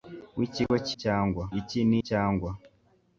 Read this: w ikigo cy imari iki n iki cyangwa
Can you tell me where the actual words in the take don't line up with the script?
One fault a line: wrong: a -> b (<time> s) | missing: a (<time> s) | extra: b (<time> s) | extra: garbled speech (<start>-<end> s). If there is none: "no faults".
wrong: imari -> cyangwa (1.0 s)
missing: iki (1.9 s)